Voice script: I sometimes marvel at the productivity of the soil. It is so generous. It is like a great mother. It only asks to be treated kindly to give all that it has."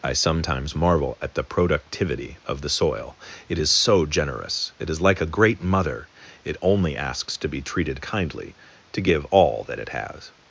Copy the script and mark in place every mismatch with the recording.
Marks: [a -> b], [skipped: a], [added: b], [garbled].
I sometimes marvel at the productivity of the soil. It is so generous. It is like a great mother. It only asks to be treated kindly to give all that it has."